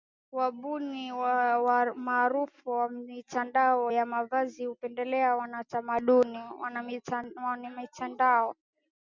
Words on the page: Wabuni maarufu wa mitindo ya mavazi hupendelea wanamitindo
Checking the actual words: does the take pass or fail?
pass